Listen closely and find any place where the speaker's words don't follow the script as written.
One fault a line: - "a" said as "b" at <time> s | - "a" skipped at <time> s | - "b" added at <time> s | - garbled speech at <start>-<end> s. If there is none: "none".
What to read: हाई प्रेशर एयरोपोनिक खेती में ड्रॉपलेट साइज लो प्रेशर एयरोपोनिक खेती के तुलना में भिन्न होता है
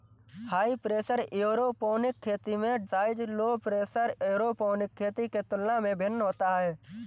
- "ड्रॉपलेट" skipped at 2.9 s